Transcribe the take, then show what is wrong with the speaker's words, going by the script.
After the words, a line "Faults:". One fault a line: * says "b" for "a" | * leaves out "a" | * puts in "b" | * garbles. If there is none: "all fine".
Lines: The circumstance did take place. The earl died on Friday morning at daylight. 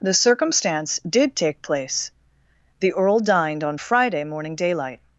The circumstance did take place. The earl dined on Friday morning daylight.
Faults:
* says "dined" for "died"
* leaves out "at"